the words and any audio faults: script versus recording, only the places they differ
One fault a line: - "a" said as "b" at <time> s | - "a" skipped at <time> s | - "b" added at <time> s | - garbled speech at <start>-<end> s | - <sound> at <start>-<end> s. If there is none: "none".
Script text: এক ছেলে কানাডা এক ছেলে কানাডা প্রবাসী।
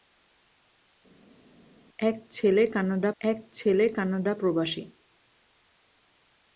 none